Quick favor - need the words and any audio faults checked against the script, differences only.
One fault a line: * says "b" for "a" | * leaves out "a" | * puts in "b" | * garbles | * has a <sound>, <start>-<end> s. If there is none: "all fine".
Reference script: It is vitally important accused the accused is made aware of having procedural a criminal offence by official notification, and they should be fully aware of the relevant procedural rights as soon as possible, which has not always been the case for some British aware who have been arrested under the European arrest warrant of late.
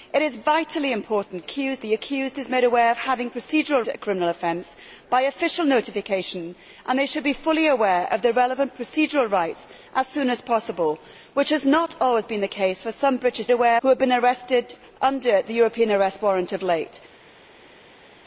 all fine